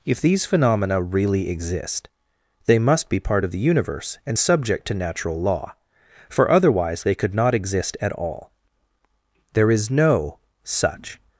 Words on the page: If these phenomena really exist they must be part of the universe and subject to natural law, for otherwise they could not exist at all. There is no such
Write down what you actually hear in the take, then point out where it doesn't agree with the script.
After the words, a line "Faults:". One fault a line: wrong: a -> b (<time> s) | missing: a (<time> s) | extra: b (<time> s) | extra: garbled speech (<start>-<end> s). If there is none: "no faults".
If these phenomena really exist they must be part of the universe and subject to natural law, for otherwise they could not exist at all. There is no such
Faults:
no faults